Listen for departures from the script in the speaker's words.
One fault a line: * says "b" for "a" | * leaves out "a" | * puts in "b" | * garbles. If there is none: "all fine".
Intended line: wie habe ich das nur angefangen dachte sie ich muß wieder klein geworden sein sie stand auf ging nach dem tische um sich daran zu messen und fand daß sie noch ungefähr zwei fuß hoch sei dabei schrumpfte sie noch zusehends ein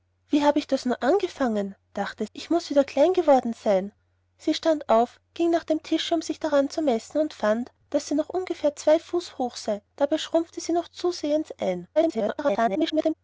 * leaves out "sie"
* garbles